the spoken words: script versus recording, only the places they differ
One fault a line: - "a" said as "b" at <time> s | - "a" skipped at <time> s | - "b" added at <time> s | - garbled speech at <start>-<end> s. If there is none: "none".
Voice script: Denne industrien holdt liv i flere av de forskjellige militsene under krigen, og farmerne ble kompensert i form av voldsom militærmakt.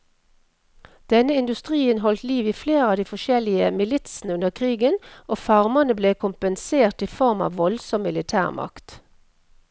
none